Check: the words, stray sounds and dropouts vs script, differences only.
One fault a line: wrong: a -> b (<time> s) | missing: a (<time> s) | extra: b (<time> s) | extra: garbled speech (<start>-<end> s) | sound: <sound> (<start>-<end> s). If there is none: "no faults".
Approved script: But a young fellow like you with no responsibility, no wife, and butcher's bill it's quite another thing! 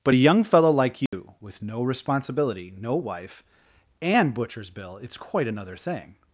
sound: dropout (1.1-1.1 s)